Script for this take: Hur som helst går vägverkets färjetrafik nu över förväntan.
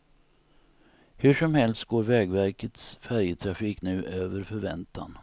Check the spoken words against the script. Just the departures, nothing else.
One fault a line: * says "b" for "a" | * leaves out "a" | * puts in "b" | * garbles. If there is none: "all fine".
all fine